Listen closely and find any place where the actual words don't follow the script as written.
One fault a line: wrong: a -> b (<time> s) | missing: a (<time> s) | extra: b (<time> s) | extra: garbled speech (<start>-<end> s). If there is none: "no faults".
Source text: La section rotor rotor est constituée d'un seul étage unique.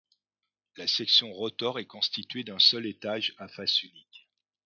missing: rotor (1.8 s)
extra: à face (3.4 s)